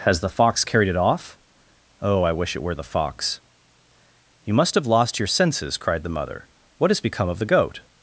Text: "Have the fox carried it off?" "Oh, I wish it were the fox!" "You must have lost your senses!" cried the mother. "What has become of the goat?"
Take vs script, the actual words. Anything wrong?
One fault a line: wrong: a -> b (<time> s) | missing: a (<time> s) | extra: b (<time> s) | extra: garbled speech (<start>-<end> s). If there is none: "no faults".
wrong: Have -> Has (0.0 s)